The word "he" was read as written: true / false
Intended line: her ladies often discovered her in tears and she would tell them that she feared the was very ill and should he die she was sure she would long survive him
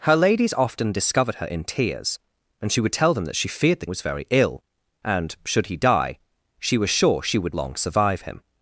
true